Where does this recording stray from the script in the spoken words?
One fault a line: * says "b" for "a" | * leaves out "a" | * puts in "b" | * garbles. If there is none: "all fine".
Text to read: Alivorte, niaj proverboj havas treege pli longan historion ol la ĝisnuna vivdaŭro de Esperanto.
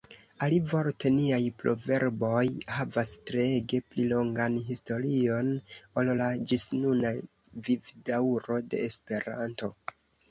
all fine